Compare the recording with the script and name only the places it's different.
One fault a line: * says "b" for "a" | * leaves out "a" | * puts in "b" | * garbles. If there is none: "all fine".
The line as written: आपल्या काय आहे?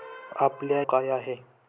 all fine